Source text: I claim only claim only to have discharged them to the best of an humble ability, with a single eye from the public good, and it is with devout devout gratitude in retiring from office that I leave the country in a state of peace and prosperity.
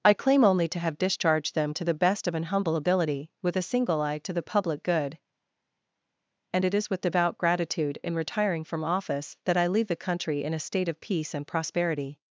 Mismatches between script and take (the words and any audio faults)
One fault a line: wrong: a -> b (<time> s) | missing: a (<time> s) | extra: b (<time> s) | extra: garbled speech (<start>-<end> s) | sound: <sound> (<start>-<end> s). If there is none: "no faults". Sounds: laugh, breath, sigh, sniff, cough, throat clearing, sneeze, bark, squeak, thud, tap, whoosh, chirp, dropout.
missing: claim only (0.7 s)
wrong: from -> to (4.2 s)
missing: devout (7.4 s)